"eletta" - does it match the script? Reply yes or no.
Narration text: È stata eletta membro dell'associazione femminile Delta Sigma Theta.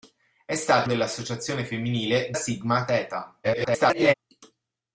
no